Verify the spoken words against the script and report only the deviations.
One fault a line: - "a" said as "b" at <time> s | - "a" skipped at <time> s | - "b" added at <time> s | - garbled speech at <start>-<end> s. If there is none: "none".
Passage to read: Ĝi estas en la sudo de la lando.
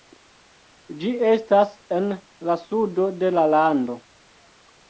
none